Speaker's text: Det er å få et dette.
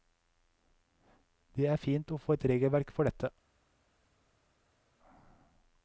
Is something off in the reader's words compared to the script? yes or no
yes